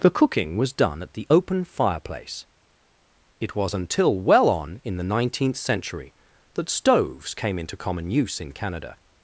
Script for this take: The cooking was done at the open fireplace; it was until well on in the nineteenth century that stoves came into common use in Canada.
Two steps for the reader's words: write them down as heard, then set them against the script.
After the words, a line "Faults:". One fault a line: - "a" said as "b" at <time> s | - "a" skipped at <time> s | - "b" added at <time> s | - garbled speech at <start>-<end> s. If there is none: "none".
The cooking was done at the open fireplace; it was until well on in the nineteenth century that stoves came into common use in Canada.
Faults:
none